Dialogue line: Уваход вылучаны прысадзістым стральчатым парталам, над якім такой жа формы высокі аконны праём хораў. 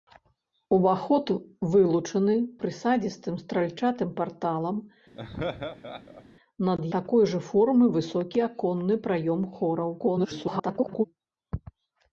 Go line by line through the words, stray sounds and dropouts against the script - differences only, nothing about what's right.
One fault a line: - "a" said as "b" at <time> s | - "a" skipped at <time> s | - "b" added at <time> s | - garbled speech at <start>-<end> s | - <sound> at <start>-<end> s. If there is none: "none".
- laugh at 5.2-6.2 s
- "якім" skipped at 6.8 s
- garbled speech at 10.0-11.0 s